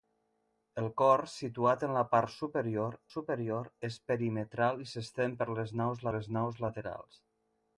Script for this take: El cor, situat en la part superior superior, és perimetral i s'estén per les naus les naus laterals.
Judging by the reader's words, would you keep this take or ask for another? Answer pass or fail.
pass